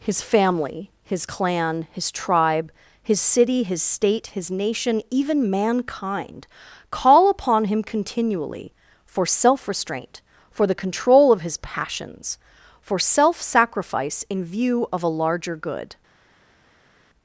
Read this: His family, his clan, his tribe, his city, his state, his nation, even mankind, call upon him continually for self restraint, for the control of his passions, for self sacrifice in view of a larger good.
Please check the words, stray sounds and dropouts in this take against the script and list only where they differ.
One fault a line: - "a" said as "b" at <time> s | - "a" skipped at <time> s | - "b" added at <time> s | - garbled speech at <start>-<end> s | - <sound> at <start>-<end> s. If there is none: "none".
none